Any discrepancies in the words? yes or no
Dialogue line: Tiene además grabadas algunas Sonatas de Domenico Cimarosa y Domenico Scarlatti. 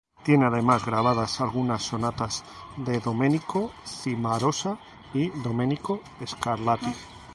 no